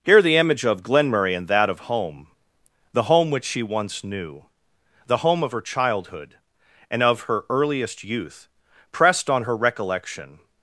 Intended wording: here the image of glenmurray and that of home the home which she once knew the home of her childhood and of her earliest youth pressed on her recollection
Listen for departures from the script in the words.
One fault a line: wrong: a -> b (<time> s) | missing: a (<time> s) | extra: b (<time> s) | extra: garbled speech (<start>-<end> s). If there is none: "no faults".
no faults